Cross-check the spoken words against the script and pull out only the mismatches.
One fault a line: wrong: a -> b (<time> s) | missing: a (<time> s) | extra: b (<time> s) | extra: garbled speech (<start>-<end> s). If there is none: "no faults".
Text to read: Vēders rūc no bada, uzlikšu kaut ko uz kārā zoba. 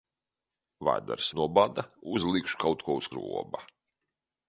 missing: rūc (1.3 s)
missing: kārā (3.1 s)